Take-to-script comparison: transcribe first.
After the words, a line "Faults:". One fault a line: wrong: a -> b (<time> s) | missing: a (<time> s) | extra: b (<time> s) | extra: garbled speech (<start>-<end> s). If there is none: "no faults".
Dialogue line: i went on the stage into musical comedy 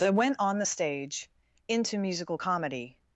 that went on the stage into musical comedy
Faults:
wrong: i -> that (0.0 s)